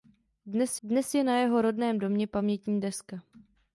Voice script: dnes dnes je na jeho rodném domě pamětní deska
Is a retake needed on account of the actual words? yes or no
no